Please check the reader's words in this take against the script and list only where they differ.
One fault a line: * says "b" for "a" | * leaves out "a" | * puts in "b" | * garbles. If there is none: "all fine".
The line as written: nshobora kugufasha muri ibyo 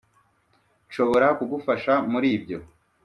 all fine